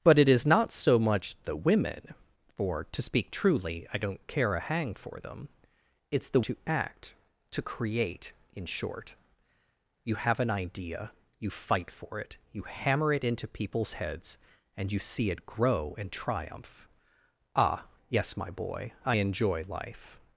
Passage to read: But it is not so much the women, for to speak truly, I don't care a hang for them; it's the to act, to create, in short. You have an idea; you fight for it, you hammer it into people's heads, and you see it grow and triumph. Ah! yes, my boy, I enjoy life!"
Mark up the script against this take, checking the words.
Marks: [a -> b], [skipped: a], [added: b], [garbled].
But it is not so much the women, for to speak truly, I don't care a hang for them; it's the to act, to create, in short. You have an idea; you fight for it, you hammer it into people's heads, and you see it grow and triumph. Ah! yes, my boy, I enjoy life!"